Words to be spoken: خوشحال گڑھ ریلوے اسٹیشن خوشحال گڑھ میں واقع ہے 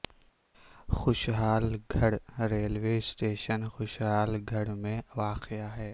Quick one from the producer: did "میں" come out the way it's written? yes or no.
yes